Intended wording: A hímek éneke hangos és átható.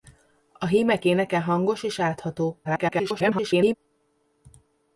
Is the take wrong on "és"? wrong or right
right